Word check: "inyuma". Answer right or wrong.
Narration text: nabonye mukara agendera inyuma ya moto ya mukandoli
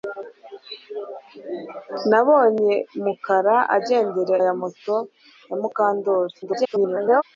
wrong